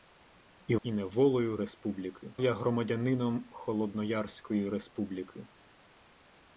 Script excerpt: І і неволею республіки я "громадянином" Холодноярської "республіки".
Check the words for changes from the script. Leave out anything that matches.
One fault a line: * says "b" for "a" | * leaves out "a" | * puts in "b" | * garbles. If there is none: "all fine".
all fine